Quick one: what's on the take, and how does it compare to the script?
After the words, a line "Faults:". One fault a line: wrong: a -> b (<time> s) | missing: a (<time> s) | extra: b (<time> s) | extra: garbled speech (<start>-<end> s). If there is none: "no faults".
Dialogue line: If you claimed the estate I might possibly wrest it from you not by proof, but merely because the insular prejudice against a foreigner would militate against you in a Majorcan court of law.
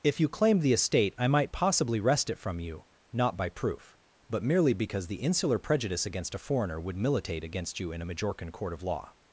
If you claimed the estate I might possibly wrest it from you not by proof, but merely because the insular prejudice against a foreigner would militate against you in a Majorcan court of law.
Faults:
no faults